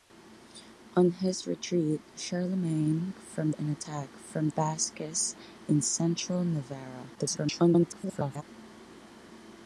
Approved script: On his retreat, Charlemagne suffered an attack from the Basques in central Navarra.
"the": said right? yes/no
no